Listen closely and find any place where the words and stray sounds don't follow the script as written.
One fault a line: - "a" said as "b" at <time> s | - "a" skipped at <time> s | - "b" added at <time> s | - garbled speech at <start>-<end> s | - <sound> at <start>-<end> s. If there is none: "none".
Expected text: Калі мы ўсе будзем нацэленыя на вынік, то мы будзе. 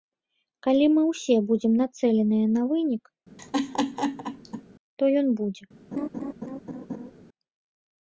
- laugh at 3.4-4.6 s
- "мы" said as "ён" at 5.2 s
- laugh at 5.9-7.1 s